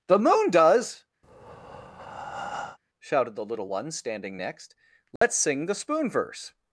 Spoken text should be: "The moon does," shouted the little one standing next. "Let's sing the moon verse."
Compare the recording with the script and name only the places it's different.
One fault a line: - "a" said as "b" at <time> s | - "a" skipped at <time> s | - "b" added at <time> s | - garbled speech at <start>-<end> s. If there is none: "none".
- "moon" said as "spoon" at 5.7 s